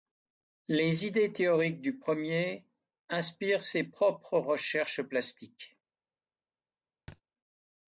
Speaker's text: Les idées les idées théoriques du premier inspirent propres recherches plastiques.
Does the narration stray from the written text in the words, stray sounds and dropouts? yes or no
yes